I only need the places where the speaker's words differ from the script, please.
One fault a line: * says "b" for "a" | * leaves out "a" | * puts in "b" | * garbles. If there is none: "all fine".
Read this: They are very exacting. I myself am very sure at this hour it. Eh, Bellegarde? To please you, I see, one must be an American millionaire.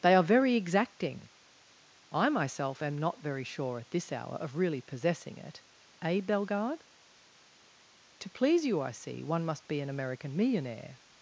* puts in "not"
* puts in "of really possessing"